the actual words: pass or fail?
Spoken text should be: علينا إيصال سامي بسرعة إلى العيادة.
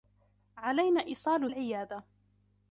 fail